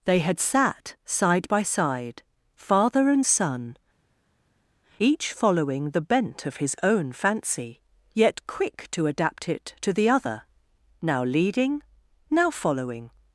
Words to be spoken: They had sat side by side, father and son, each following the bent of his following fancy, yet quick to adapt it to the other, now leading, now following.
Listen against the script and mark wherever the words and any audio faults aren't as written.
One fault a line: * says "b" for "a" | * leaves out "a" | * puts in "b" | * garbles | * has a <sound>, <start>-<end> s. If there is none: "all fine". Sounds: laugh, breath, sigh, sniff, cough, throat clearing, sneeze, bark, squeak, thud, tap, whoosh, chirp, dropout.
* says "own" for "following"